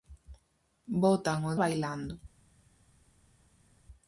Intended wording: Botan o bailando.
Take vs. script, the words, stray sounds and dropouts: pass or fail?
pass